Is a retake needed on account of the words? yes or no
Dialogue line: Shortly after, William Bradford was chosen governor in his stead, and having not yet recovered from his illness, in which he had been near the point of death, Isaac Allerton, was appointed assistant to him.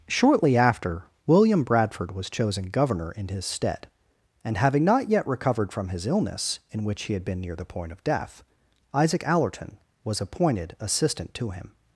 no